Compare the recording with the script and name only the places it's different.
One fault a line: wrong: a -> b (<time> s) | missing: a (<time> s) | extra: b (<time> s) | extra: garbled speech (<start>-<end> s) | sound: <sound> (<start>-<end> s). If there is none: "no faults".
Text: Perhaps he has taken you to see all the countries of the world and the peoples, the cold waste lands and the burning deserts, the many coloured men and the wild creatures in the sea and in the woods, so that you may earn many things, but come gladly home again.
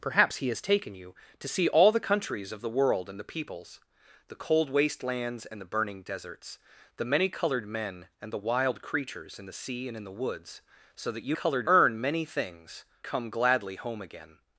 wrong: may -> coloured (11.3 s)
missing: but (12.9 s)